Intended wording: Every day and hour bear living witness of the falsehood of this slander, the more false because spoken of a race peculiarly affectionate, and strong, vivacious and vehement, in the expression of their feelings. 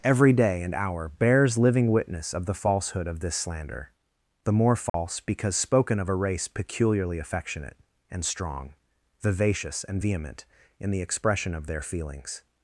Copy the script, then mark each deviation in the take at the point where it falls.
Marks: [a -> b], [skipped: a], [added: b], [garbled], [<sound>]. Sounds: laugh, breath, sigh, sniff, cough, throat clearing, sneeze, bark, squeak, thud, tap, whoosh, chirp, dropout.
Every day and hour [bear -> bears] living witness of the falsehood of this slander, the more false [dropout] because spoken of a race peculiarly affectionate, and strong, vivacious and vehement, in the expression of their feelings.